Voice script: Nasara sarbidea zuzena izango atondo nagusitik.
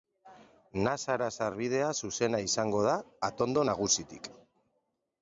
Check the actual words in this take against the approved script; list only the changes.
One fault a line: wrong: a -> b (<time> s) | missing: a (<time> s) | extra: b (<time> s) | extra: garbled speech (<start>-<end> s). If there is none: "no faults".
extra: da (2.9 s)